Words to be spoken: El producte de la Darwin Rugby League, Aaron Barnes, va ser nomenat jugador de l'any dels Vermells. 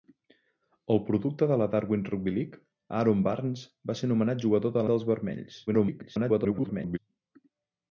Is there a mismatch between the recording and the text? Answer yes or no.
yes